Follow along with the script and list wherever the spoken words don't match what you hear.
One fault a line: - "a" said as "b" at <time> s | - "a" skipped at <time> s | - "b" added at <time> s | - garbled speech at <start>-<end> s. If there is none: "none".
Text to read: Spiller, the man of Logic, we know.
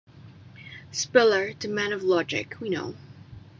none